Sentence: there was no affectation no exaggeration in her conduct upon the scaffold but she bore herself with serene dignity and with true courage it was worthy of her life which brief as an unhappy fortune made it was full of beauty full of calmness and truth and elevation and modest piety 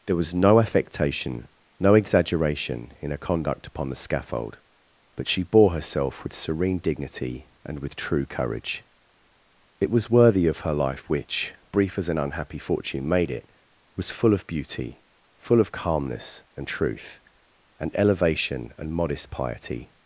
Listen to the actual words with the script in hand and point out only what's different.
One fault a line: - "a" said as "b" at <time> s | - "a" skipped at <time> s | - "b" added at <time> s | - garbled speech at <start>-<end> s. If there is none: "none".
none